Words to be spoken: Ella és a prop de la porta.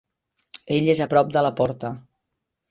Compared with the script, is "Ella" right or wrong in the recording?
wrong